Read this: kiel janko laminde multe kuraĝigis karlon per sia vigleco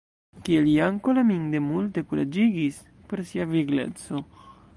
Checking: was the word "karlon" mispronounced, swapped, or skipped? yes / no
yes